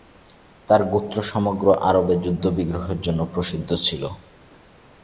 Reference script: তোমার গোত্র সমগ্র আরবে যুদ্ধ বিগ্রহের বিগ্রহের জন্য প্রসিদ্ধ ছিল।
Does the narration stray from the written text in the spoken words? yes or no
yes